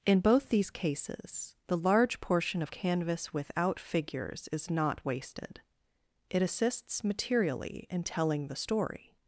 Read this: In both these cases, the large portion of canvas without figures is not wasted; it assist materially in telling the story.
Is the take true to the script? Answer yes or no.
no